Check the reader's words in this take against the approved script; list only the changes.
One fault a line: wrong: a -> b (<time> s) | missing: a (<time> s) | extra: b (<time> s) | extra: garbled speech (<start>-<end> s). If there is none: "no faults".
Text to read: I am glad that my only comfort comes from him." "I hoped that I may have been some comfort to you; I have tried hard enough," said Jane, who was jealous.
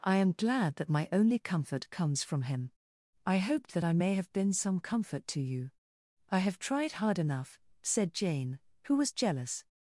no faults